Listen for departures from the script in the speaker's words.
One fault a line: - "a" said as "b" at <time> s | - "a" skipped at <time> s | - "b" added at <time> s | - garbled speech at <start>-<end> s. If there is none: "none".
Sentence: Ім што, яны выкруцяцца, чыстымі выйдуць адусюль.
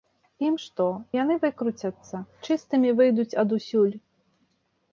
none